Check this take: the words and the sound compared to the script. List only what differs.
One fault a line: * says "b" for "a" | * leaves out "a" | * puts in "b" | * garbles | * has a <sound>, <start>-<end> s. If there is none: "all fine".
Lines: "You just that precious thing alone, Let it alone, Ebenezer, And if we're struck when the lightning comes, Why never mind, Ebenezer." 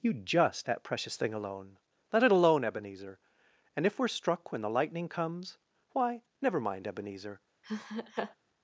* has a laugh, 7.6-8.4 s